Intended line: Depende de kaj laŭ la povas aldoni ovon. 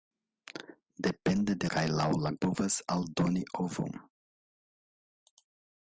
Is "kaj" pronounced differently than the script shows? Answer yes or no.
no